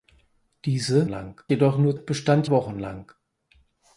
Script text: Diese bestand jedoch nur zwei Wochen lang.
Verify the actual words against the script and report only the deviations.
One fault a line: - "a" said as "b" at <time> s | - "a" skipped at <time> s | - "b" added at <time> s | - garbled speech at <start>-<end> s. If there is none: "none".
- "bestand" said as "lang" at 1.1 s
- "zwei" said as "bestand" at 1.9 s